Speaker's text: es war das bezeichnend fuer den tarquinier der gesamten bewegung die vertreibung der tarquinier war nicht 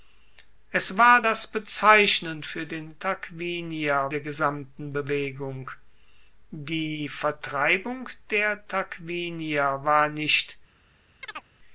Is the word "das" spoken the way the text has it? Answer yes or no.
yes